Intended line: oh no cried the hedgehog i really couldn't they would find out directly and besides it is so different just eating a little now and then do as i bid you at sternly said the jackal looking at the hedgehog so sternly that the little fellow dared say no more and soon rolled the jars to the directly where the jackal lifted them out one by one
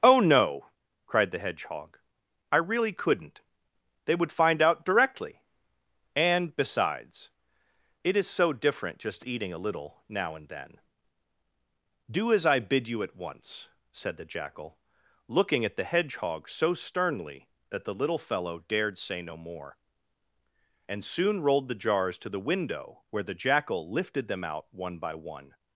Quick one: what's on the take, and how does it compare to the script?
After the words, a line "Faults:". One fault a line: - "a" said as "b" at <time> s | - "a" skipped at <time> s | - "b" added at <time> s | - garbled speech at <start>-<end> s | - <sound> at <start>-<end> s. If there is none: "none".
oh no cried the hedgehog i really couldn't they would find out directly and besides it is so different just eating a little now and then do as i bid you at once said the jackal looking at the hedgehog so sternly that the little fellow dared say no more and soon rolled the jars to the window where the jackal lifted them out one by one
Faults:
- "sternly" said as "once" at 13.2 s
- "directly" said as "window" at 22.4 s